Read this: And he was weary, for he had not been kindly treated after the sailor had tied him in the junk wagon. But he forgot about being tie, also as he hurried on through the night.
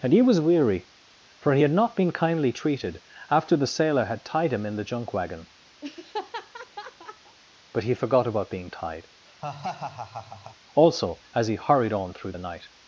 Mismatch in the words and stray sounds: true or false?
true